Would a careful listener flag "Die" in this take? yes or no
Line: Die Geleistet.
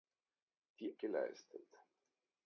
no